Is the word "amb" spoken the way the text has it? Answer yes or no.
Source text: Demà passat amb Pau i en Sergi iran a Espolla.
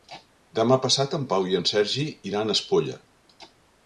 no